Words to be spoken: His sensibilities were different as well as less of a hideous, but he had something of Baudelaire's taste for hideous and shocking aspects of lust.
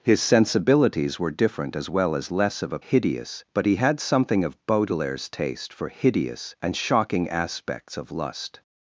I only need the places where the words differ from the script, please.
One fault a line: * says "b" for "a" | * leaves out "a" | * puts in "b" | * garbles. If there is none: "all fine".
all fine